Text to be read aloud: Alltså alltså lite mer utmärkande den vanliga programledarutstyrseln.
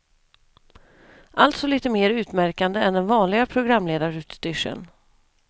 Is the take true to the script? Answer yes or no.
no